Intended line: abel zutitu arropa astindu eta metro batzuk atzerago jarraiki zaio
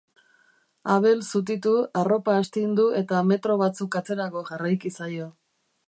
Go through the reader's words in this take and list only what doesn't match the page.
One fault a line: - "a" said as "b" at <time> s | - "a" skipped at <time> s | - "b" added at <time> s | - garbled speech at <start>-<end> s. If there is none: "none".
none